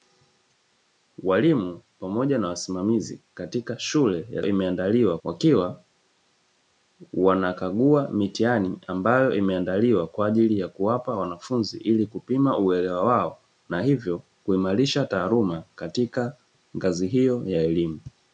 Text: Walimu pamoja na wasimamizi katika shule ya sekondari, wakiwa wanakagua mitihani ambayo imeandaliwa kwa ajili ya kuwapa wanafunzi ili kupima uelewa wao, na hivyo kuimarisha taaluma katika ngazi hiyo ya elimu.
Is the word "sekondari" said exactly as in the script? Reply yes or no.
no